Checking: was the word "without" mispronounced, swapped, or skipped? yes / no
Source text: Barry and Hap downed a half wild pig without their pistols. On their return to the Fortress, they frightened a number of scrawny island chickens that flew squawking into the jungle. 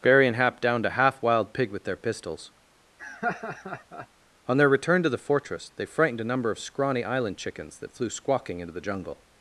yes